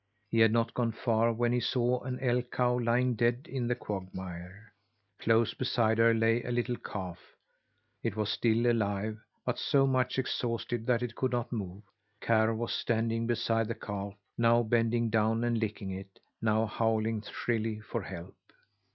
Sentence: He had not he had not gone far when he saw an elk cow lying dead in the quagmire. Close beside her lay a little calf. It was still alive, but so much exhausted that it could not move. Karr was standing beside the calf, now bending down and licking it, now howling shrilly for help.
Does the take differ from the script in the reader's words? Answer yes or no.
yes